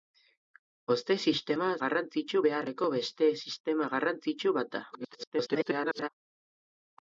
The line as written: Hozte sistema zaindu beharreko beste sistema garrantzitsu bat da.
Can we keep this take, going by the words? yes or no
no